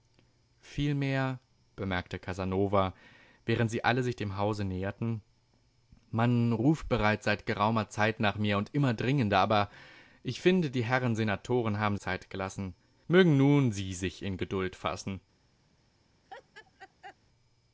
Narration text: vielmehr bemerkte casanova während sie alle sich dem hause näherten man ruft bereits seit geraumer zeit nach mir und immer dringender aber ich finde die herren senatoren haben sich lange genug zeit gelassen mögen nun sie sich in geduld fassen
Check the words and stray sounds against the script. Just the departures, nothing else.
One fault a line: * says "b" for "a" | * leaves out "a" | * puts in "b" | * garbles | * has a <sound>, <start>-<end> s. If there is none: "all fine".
* leaves out "sich lange genug"
* has a laugh, 16.3-17.2 s